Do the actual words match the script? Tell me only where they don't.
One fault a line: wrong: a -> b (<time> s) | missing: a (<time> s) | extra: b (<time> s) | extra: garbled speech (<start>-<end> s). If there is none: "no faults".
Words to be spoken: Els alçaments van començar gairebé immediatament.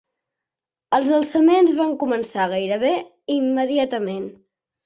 no faults